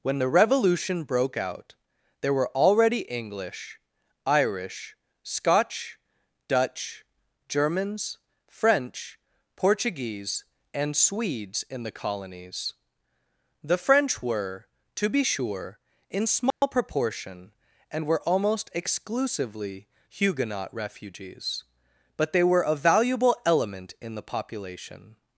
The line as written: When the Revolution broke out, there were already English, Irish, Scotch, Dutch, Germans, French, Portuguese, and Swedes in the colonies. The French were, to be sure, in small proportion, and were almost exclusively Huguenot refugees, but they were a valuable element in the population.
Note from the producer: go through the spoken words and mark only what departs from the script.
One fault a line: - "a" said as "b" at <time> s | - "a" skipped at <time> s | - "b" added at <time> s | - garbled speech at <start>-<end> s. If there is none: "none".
none